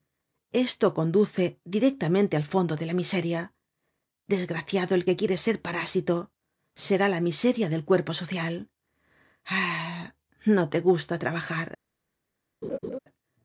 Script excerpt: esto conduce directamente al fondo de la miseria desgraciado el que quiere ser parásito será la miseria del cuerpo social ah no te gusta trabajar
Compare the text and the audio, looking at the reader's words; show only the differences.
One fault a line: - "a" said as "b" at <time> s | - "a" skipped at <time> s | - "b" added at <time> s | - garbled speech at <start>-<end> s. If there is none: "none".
none